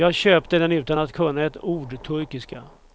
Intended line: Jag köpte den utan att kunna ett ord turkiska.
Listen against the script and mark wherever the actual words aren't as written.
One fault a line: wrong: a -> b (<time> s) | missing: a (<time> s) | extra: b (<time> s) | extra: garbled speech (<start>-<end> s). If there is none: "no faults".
no faults